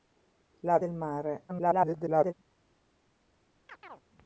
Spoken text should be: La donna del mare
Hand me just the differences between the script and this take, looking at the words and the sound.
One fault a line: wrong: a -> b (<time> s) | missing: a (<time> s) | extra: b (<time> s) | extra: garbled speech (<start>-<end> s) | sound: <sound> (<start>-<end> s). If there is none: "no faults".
missing: donna (0.8 s)
extra: garbled speech (1.5-2.3 s)
sound: chirp (3.7-4.0 s)